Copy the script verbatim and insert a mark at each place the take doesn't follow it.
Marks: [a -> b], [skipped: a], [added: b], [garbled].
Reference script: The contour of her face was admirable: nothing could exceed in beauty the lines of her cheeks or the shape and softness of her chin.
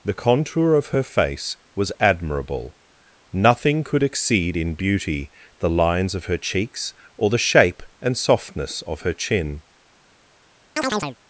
The contour of her face was admirable: nothing could exceed in beauty the lines of her cheeks or the shape and softness of her chin.